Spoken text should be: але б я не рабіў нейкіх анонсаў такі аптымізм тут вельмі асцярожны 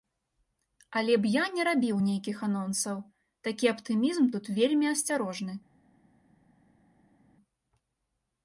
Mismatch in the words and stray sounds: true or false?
false